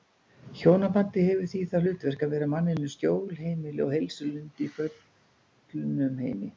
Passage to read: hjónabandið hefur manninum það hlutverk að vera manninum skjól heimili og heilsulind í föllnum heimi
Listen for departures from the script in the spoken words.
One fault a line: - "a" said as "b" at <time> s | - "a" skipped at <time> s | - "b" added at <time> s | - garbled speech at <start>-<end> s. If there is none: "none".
- "manninum" said as "því" at 1.5 s